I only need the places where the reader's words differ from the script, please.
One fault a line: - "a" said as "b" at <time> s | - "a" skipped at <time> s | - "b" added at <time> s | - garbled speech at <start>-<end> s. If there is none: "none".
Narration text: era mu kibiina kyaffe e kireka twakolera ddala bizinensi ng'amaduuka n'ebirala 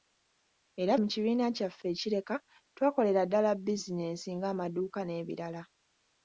none